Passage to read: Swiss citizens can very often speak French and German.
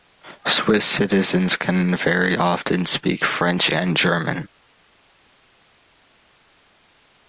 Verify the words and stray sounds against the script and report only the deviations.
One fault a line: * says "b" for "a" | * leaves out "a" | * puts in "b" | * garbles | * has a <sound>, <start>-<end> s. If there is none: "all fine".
all fine